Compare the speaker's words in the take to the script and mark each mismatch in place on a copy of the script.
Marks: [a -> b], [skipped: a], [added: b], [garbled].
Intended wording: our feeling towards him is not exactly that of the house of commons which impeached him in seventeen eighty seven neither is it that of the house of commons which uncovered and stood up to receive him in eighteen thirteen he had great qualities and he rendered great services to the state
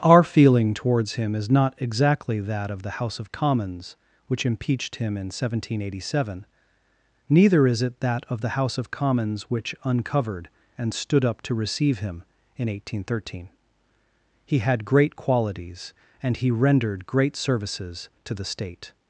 our feeling towards him is not exactly that of the house of commons which impeached him in seventeen eighty seven neither is it that of the house of commons which uncovered and stood up to receive him in eighteen thirteen he had great qualities and he rendered great services to the state